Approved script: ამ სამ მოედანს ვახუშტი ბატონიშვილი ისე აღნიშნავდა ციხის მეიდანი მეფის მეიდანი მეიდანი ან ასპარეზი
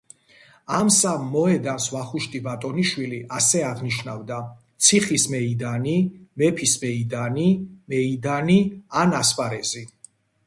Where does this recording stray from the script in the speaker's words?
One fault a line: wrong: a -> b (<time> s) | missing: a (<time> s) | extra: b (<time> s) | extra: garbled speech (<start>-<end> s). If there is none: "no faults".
wrong: ისე -> ასე (3.4 s)